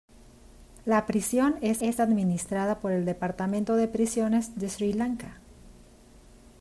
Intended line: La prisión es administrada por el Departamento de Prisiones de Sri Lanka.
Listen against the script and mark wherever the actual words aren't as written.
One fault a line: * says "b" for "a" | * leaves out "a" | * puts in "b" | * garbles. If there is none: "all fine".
* puts in "es"